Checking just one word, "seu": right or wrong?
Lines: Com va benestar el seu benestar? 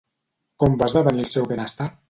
right